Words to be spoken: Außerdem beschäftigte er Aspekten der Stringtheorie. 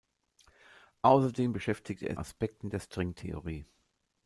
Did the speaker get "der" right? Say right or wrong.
right